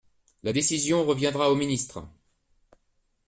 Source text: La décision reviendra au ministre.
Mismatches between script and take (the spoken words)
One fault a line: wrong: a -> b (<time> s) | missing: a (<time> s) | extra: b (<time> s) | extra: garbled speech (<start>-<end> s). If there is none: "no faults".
no faults